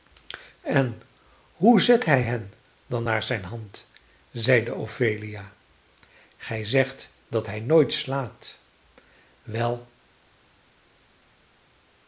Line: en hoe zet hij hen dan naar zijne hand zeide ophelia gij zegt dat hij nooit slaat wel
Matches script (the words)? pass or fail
pass